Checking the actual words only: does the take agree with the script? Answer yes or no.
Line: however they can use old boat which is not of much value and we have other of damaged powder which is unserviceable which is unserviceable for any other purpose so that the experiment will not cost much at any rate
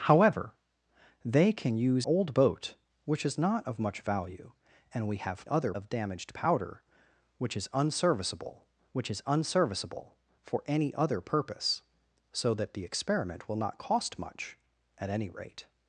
yes